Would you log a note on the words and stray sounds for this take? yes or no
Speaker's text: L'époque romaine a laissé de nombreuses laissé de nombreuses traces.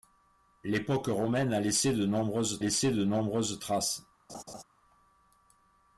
yes